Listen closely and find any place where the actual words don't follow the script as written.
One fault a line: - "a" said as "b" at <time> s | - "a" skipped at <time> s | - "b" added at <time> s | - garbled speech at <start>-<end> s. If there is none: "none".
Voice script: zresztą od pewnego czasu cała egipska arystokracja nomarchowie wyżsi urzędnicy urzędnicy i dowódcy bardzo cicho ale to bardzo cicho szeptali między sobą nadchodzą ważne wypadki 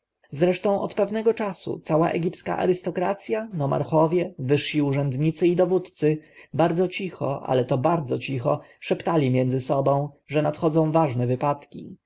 - "urzędnicy" skipped at 5.5 s
- "że" added at 10.3 s